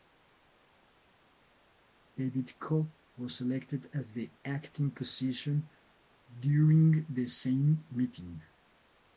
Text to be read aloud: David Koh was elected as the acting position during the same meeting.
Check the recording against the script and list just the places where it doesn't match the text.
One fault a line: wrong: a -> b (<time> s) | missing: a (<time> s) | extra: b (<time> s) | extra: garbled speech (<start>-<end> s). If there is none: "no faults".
no faults